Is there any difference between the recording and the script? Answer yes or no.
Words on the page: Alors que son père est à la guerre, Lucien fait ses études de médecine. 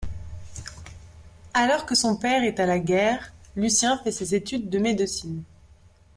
no